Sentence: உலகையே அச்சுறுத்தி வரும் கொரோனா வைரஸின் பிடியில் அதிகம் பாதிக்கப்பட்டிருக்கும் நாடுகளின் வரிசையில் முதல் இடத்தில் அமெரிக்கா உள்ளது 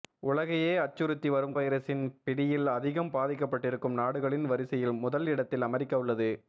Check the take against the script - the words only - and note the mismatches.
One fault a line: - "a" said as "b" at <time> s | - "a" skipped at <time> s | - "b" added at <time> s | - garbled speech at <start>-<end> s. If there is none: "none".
- "கொரோனா" skipped at 1.5 s